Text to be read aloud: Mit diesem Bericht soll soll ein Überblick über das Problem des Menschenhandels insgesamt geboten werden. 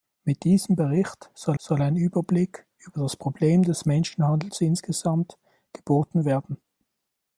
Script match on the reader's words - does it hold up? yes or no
yes